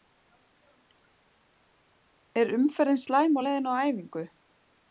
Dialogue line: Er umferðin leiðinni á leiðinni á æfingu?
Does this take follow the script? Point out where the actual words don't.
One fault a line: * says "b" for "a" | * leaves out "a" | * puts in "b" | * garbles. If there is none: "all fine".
* says "slæm" for "leiðinni"